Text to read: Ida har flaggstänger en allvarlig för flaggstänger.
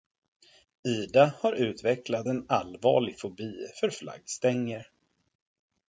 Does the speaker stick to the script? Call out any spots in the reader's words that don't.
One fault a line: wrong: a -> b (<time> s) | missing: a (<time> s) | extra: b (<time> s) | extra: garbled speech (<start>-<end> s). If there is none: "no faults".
wrong: flaggstänger -> utvecklat (1.5 s)
extra: fobi (3.2 s)